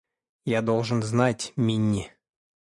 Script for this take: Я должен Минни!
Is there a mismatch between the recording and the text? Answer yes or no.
yes